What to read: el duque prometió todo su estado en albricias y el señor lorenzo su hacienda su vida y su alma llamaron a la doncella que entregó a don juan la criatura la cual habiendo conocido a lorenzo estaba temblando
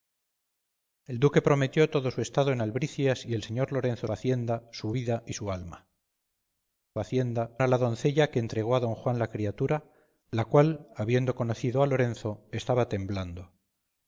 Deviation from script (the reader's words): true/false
true